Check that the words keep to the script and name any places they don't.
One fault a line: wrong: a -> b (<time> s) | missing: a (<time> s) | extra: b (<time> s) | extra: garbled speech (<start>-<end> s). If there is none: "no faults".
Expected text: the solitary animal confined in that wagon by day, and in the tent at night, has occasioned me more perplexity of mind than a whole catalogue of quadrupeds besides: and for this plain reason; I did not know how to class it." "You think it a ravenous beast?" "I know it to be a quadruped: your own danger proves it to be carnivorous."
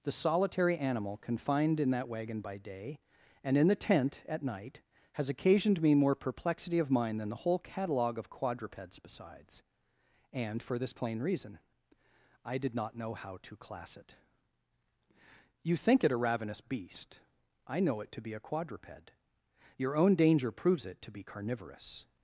wrong: a -> the (7.3 s)